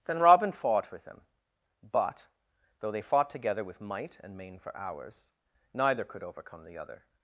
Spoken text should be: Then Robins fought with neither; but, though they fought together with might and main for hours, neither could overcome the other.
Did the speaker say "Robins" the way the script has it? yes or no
no